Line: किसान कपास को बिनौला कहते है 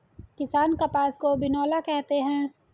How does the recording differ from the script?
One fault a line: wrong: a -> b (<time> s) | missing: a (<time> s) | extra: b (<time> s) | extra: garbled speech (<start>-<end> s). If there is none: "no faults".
no faults